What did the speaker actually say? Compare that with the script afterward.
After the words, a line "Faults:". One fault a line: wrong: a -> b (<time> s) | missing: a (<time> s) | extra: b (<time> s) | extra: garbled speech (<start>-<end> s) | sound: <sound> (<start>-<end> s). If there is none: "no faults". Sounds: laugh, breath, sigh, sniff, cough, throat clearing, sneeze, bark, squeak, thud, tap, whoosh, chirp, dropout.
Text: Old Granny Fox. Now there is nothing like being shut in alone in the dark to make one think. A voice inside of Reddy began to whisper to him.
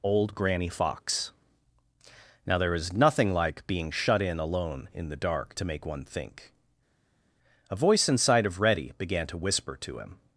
Old Granny Fox. Now there is nothing like being shut in alone in the dark to make one think. A voice inside of Reddy began to whisper to him.
Faults:
no faults